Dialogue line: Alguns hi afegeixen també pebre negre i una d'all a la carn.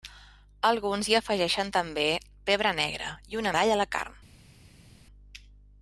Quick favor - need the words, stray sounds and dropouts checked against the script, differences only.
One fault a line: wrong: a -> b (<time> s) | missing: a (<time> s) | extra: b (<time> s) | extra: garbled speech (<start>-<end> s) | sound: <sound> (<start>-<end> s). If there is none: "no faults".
no faults